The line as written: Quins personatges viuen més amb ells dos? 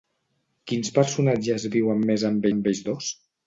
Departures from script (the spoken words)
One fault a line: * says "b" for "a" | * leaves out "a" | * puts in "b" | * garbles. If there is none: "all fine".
* puts in "amb"